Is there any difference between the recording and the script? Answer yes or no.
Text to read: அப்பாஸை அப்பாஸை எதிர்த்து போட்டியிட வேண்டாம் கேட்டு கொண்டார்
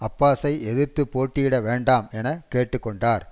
yes